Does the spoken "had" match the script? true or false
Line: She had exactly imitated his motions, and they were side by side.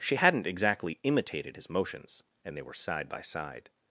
false